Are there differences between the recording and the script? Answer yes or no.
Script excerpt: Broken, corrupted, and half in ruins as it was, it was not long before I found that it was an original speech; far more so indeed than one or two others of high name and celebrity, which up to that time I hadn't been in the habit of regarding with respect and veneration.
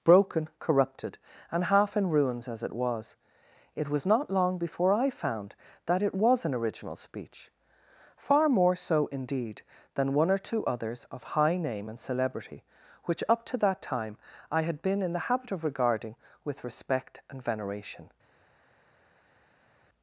yes